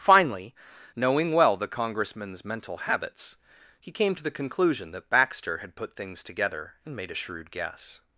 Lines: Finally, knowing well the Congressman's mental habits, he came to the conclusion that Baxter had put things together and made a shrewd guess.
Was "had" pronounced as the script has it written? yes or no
yes